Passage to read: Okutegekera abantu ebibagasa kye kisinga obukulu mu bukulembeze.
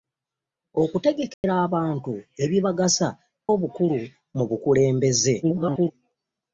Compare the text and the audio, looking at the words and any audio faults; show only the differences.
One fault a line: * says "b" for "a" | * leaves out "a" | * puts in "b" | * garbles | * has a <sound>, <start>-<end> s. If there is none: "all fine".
* has a dropout, 1.3-1.4 s
* leaves out "kye kisinga"
* garbles